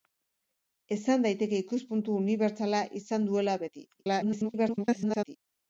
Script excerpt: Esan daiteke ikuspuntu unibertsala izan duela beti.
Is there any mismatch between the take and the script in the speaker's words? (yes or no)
yes